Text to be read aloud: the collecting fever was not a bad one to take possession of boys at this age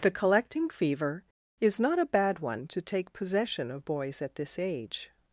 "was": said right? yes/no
no